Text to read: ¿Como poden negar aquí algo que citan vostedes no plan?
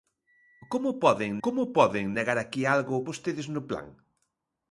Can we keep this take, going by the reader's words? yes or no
no